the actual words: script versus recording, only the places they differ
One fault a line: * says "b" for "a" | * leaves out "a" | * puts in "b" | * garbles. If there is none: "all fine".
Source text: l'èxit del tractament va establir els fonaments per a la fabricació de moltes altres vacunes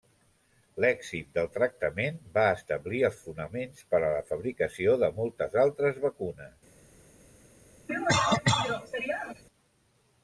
all fine